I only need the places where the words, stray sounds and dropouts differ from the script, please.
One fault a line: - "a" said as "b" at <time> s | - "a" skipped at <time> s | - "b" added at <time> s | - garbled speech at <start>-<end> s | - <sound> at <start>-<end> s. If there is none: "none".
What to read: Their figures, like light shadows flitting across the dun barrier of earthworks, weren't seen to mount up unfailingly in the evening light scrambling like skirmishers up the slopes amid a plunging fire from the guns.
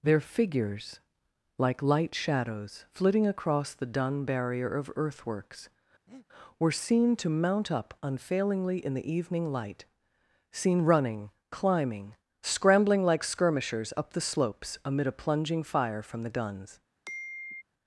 - breath at 6.1-6.3 s
- "weren't" said as "were" at 6.6 s
- "seen running climbing" added at 10.5 s
- sigh at 17.0-17.6 s